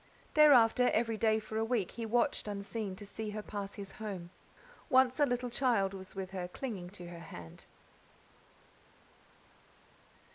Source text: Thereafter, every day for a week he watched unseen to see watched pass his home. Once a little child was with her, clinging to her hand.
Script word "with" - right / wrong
right